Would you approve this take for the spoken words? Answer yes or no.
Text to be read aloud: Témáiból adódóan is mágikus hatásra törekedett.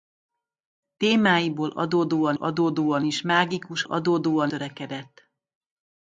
no